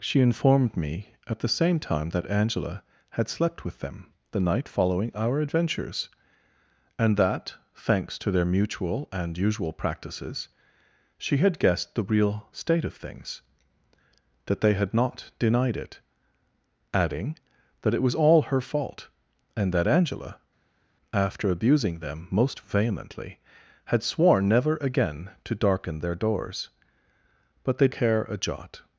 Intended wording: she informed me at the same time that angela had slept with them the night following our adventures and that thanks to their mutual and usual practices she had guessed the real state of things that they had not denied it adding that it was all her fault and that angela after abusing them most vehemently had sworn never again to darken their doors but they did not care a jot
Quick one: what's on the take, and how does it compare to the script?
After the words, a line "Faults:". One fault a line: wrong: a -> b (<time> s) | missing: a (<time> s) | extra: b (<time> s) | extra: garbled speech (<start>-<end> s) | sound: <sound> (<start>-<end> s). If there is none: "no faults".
she informed me at the same time that angela had slept with them the night following our adventures and that thanks to their mutual and usual practices she had guessed the real state of things that they had not denied it adding that it was all her fault and that angela after abusing them most vehemently had sworn never again to darken their doors but they care a jot
Faults:
missing: did not (27.9 s)